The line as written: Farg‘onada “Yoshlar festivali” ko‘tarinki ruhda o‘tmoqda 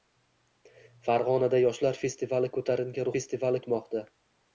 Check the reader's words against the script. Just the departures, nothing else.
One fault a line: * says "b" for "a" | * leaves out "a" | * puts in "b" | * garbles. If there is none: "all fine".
* says "festivali" for "ruhda"